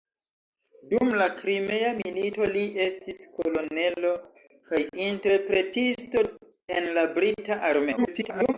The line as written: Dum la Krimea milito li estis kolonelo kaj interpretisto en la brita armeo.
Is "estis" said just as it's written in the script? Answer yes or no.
yes